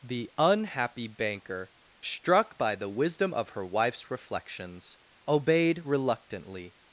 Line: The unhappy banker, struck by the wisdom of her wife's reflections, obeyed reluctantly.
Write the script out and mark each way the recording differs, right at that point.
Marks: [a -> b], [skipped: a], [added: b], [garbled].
The unhappy banker, struck by the wisdom of her wife's reflections, obeyed reluctantly.